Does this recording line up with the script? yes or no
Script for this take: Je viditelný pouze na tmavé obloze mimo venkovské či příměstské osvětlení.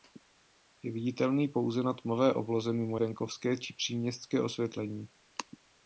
yes